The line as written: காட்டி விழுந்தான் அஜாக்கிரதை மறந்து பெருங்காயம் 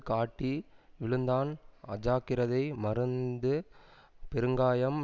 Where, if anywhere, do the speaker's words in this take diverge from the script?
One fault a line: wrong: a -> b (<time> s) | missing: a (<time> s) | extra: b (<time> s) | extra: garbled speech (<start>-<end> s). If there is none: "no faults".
no faults